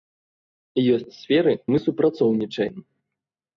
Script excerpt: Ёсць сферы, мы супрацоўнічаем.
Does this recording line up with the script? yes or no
yes